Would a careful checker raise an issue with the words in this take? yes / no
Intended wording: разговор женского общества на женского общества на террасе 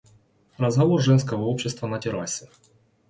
yes